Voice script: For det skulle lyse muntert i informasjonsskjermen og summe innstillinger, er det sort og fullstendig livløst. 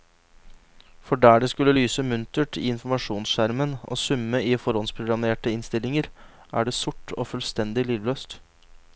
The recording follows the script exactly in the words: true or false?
false